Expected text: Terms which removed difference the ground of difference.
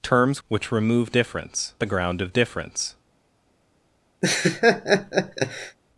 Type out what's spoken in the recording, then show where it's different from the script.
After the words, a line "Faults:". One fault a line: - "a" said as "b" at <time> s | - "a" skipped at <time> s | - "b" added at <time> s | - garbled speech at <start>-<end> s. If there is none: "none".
Terms which removed difference the ground of difference.
Faults:
none